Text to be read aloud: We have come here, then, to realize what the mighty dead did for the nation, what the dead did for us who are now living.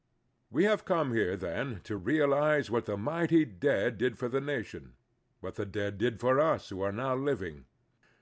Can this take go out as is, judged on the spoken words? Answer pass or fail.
pass